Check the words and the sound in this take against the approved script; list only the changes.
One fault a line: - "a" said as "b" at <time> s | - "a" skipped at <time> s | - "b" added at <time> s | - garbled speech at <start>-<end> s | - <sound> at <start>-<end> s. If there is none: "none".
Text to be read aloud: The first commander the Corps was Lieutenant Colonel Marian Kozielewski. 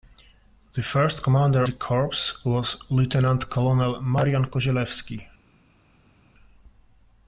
none